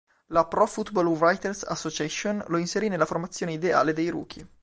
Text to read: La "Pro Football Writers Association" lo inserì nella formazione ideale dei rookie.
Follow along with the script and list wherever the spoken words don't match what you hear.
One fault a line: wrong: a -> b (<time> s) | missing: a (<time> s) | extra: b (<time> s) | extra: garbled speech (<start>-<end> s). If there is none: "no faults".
no faults